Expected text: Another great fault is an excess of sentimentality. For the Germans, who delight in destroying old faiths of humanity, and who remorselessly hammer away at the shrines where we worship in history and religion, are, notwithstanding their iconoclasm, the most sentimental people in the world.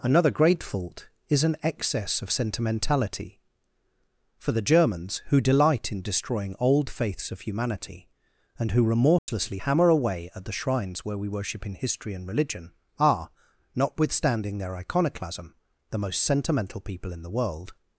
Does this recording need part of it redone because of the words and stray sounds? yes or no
yes